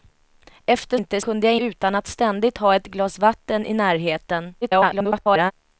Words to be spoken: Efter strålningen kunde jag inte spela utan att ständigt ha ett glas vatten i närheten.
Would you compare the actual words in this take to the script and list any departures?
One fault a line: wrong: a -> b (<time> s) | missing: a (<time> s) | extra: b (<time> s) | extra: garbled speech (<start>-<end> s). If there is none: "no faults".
wrong: strålningen -> inte (0.9 s)
missing: inte spela (1.6 s)
extra: garbled speech (4.6-5.5 s)